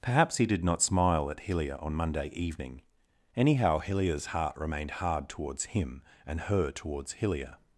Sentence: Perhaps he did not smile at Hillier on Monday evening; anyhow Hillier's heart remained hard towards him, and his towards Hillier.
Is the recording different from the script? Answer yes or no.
yes